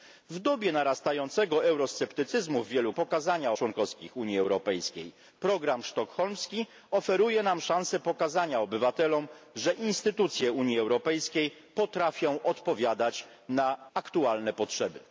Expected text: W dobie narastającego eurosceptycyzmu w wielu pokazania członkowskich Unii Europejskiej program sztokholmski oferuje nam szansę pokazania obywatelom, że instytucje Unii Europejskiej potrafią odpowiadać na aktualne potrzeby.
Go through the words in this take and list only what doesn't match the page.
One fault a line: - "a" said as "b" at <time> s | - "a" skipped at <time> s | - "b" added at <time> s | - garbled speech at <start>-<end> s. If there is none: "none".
none